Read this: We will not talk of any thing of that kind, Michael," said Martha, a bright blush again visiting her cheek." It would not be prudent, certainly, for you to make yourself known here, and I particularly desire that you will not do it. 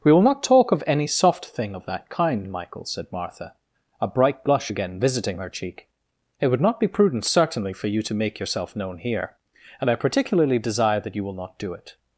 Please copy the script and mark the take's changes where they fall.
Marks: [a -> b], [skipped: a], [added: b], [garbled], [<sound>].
We will not talk of any [added: soft] thing of that kind, Michael," said Martha, a bright blush again visiting her cheek." It would not be prudent, certainly, for you to make yourself known here, and I particularly desire that you will not do it.